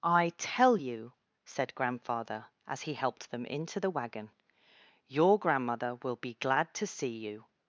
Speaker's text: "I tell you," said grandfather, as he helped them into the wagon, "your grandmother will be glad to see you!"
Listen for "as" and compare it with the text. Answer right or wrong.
right